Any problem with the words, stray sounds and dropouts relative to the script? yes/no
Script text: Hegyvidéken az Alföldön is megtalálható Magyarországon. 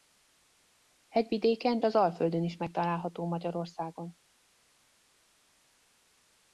no